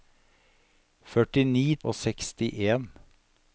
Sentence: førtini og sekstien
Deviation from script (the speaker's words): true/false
false